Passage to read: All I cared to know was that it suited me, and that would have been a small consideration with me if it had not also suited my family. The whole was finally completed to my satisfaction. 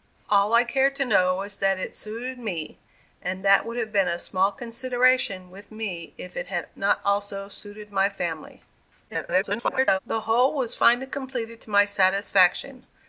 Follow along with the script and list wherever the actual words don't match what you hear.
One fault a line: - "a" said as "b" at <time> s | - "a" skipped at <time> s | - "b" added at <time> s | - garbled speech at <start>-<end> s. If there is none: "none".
- garbled speech at 9.1-10.0 s